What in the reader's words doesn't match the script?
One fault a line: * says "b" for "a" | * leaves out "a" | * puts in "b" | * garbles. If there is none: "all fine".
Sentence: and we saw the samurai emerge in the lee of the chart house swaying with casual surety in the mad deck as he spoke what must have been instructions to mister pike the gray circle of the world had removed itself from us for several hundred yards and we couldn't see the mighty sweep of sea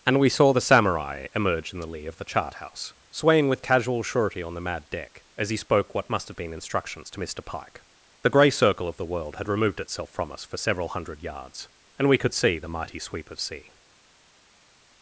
* says "on" for "in"
* says "could" for "couldn't"